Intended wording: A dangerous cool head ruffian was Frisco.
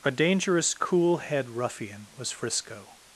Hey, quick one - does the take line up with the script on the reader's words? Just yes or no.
yes